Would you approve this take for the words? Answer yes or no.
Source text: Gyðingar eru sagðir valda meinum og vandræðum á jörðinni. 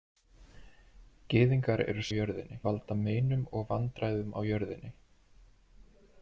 no